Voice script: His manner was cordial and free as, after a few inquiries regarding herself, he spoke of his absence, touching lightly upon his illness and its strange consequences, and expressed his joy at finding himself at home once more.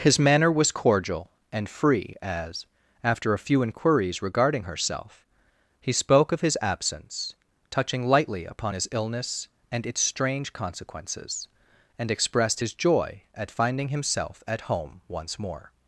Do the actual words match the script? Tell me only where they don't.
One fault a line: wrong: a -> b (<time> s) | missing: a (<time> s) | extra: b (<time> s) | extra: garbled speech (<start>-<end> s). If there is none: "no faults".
no faults